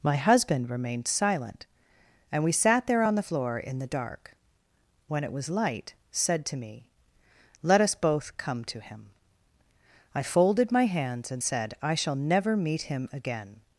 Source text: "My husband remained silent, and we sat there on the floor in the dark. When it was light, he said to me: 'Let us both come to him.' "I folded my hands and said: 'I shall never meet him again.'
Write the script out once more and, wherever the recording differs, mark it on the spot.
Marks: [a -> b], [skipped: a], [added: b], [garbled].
"My husband remained silent, and we sat there on the floor in the dark. When it was light, [skipped: he] said to me: 'Let us both come to him.' "I folded my hands and said: 'I shall never meet him again.'